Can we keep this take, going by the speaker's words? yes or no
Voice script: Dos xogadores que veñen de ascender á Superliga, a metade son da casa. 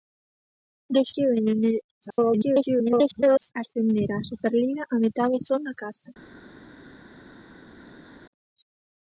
no